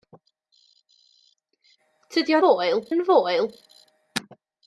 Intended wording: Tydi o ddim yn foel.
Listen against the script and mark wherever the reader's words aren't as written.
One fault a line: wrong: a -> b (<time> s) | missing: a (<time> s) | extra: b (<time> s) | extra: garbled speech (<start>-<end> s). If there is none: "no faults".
wrong: ddim -> foel (2.4 s)